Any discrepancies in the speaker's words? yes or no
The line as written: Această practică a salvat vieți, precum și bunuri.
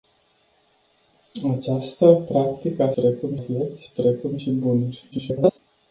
yes